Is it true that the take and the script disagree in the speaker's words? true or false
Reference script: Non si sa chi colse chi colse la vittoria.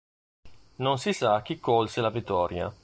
true